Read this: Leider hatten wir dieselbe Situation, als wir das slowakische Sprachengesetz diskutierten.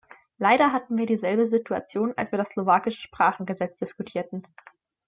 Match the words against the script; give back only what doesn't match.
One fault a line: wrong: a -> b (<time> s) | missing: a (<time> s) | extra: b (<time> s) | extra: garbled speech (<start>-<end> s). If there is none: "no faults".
no faults